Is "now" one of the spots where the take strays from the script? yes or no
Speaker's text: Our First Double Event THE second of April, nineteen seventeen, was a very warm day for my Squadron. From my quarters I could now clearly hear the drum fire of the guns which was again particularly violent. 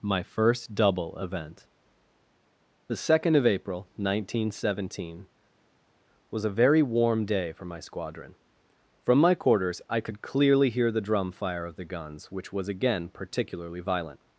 yes